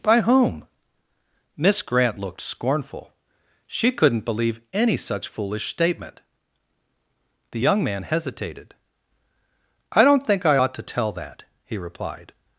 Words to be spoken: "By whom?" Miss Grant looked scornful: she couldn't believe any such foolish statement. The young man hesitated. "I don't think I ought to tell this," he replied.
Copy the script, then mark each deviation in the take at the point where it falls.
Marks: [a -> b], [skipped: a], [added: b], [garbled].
"By whom?" Miss Grant looked scornful: she couldn't believe any such foolish statement. The young man hesitated. "I don't think I ought to tell [this," -> that] he replied.